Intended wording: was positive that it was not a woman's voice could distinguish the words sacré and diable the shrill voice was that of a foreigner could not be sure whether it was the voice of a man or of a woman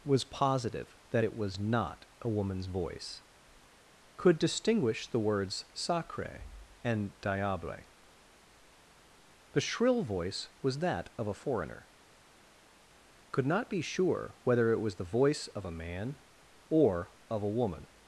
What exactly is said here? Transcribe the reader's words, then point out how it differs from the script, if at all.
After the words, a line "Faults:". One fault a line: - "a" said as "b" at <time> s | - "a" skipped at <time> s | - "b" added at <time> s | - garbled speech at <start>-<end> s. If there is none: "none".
was positive that it was not a woman's voice could distinguish the words sacré and diable the shrill voice was that of a foreigner could not be sure whether it was the voice of a man or of a woman
Faults:
none